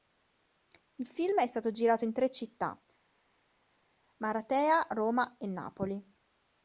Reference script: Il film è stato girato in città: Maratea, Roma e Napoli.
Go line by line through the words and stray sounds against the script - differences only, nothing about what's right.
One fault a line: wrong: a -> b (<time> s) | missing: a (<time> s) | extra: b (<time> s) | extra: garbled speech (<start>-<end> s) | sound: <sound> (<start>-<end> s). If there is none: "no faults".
extra: tre (2.1 s)